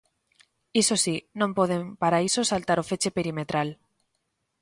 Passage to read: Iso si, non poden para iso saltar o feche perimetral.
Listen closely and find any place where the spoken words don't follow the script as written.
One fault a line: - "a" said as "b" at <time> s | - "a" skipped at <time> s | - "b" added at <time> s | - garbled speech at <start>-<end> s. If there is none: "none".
none